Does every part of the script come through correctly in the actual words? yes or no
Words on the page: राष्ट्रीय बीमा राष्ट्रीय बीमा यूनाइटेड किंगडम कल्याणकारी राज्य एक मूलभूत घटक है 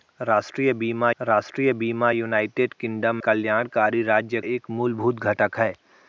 yes